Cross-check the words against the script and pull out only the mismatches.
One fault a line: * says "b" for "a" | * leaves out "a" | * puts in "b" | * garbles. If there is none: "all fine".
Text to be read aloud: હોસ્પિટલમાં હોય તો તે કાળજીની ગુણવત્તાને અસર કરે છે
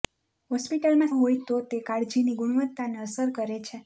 all fine